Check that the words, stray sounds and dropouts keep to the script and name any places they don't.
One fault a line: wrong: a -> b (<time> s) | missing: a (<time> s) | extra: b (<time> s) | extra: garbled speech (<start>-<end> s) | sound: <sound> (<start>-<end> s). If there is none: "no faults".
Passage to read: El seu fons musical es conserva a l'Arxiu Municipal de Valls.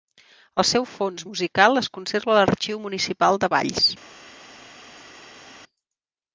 no faults